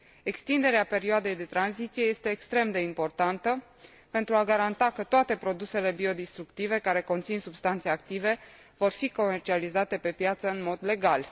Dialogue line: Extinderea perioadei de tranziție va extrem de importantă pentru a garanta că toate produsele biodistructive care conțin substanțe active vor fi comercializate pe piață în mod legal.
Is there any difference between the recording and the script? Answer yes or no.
yes